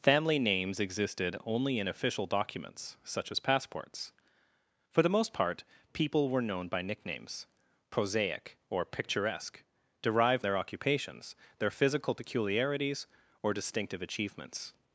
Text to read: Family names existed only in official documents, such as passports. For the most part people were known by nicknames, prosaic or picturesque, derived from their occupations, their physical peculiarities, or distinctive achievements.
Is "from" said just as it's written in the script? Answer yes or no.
no